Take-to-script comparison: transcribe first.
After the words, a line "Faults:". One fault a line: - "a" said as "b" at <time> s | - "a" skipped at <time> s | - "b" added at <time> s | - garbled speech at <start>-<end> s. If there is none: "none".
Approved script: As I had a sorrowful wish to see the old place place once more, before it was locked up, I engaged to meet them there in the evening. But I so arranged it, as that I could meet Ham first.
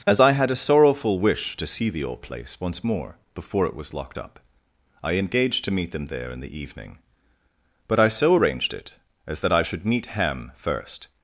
As I had a sorrowful wish to see the old place once more, before it was locked up, I engaged to meet them there in the evening. But I so arranged it, as that I should meet Ham first.
Faults:
- "place" skipped at 2.6 s
- "could" said as "should" at 9.6 s